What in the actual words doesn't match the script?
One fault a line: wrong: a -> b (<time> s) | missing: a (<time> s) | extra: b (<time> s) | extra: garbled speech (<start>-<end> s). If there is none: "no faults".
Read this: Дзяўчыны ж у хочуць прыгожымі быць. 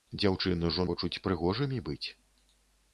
no faults